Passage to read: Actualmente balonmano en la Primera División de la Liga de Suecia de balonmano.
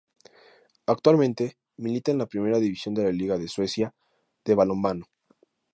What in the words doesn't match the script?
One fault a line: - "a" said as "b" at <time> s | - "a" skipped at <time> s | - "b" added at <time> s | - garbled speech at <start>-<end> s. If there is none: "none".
- "balonmano" said as "milita" at 1.8 s